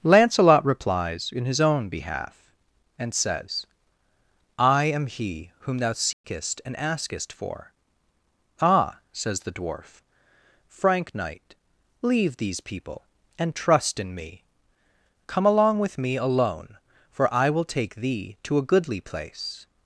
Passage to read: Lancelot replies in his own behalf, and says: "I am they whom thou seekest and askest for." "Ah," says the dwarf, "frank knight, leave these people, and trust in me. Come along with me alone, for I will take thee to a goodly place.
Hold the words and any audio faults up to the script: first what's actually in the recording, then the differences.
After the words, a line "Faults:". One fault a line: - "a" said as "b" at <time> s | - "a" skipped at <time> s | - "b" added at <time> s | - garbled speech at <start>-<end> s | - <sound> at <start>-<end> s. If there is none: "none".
Lancelot replies in his own behalf, and says: "I am he whom thou seekest and askest for." "Ah," says the dwarf, "frank knight, leave these people, and trust in me. Come along with me alone, for I will take thee to a goodly place.
Faults:
- "they" said as "he" at 5.0 s
- dropout at 6.1-6.2 s